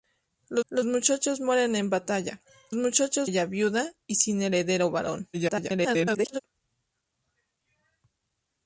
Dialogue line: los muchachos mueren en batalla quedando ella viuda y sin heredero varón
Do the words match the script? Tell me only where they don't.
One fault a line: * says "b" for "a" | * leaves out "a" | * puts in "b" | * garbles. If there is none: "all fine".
* puts in "los"
* says "muchachos" for "quedando"
* garbles